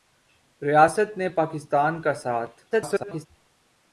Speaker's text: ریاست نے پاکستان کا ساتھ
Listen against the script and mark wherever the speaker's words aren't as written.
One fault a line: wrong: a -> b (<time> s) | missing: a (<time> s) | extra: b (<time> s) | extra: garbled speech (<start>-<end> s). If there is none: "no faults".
extra: garbled speech (2.7-3.3 s)